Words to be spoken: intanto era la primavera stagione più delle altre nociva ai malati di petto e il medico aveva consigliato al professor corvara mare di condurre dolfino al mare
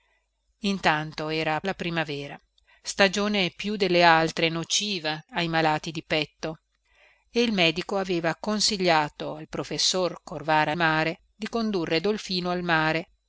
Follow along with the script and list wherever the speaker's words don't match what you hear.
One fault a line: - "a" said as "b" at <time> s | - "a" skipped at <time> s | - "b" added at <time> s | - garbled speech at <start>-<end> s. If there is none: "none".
none